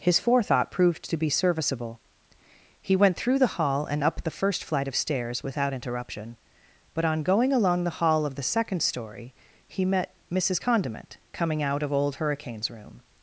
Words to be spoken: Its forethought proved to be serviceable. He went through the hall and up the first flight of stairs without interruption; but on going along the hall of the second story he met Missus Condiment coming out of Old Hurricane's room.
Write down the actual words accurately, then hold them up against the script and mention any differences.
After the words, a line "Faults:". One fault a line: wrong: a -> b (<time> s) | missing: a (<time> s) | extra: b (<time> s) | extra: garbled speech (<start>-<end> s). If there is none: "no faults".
His forethought proved to be serviceable. He went through the hall and up the first flight of stairs without interruption; but on going along the hall of the second story he met Missus Condiment coming out of Old Hurricane's room.
Faults:
wrong: Its -> His (0.0 s)